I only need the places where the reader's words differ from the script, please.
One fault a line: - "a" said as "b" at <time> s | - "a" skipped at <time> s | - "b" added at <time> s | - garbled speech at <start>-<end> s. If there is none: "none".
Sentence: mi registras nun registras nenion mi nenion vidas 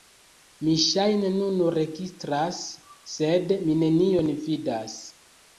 - "registras" said as "ŝajne" at 0.8 s
- "nenion" said as "sed" at 3.2 s